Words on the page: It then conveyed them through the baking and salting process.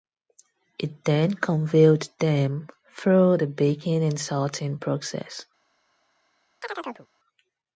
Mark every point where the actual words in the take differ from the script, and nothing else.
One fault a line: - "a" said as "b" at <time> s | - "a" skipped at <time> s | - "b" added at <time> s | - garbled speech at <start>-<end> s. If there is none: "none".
none